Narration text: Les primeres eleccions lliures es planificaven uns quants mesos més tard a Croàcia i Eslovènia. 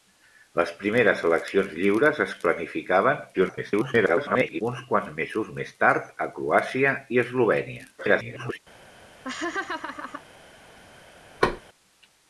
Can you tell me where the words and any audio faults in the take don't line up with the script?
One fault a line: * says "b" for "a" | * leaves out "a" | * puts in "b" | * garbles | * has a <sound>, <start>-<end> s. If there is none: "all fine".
* garbles
* garbles
* has a laugh, 9.2-10.2 s
* has a thud, 11.4-11.6 s